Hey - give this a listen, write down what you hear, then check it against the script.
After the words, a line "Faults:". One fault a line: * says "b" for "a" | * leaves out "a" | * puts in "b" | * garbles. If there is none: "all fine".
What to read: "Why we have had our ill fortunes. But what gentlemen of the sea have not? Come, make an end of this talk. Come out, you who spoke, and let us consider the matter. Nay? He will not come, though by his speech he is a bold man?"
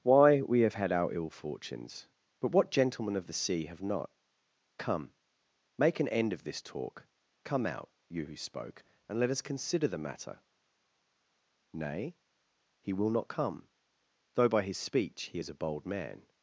"Why we have had our ill fortunes. But what gentlemen of the sea have not? Come, make an end of this talk. Come out, you who spoke, and let us consider the matter. Nay? He will not come, though by his speech he is a bold man?"
Faults:
all fine